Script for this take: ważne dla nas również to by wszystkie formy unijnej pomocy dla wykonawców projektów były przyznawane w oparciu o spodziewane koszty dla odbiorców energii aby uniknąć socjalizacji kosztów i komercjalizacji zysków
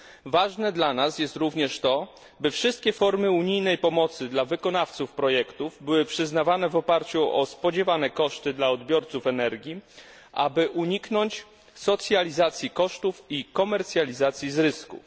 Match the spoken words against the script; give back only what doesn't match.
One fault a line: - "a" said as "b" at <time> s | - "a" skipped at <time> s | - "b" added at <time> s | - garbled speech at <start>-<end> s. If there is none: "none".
- "jest" added at 1.2 s